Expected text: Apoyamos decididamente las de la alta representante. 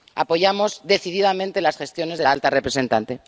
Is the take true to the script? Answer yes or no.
no